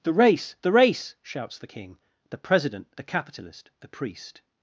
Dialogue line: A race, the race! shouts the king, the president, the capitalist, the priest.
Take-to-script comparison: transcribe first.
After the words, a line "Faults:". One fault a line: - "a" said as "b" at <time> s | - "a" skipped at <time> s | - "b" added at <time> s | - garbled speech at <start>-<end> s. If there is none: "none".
The race, the race! shouts the king, the president, the capitalist, the priest.
Faults:
- "A" said as "The" at 0.0 s